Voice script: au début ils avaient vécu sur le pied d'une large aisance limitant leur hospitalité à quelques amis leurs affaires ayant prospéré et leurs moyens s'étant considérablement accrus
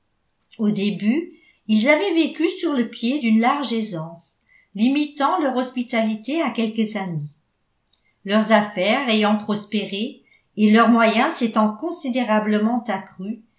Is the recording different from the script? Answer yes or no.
no